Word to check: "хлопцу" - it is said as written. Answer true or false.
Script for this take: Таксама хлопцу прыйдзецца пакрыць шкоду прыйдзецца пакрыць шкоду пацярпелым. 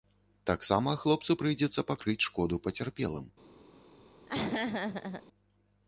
true